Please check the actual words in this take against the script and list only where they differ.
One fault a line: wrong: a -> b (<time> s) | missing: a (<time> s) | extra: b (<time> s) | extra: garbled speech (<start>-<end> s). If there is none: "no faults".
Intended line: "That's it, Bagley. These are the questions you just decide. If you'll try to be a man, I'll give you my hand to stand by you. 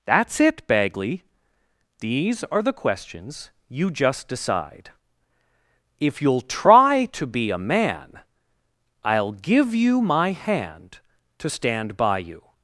no faults